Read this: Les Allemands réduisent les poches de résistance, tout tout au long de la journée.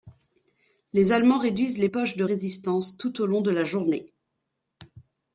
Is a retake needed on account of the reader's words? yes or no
yes